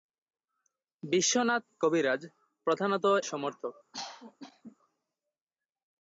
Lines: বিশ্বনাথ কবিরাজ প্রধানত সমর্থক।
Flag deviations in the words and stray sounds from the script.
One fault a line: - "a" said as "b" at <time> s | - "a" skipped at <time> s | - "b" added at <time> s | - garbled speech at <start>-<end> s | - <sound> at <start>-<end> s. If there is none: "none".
- cough at 3.9-4.8 s